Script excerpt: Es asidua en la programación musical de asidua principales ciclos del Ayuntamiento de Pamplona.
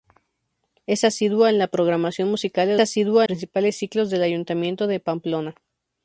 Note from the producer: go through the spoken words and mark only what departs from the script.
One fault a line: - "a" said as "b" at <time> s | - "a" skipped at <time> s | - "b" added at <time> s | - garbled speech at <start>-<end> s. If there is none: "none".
none